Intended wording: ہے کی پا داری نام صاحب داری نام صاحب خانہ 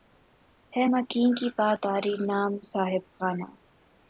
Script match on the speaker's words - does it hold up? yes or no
no